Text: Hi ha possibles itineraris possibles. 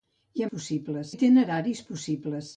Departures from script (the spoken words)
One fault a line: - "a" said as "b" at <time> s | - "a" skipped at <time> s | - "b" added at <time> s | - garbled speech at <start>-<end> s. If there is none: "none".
none